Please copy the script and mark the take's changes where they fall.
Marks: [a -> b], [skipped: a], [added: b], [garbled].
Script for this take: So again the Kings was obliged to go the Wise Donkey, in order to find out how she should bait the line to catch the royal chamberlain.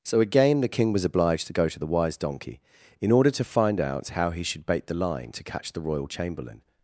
So again the [Kings -> King] was obliged to go [added: to] the Wise Donkey, in order to find out how [she -> he] should bait the line to catch the royal chamberlain.